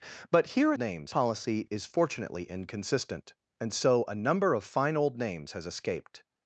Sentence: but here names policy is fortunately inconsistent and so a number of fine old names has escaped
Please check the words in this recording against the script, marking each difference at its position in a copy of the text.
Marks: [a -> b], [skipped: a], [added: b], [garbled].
but here names policy is fortunately inconsistent and so a number of fine old names has escaped